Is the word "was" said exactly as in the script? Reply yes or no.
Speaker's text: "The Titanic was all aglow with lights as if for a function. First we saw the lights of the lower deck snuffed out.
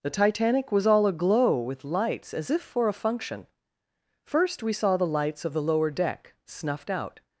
yes